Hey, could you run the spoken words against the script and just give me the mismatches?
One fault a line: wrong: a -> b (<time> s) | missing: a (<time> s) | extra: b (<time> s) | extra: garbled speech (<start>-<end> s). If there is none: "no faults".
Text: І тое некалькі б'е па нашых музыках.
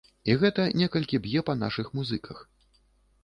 wrong: тое -> гэта (0.4 s)